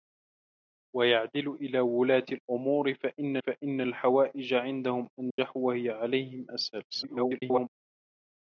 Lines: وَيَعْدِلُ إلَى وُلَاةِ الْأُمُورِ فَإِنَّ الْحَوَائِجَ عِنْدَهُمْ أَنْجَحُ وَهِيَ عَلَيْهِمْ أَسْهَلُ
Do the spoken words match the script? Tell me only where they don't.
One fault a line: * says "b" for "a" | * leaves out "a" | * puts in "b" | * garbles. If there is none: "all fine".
* puts in "فَإِنَّ"
* garbles